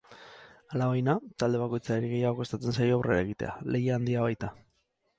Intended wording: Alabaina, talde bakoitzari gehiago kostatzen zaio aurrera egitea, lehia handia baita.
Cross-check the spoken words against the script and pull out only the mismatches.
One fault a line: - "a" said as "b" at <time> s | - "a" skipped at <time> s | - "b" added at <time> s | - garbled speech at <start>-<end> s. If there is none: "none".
none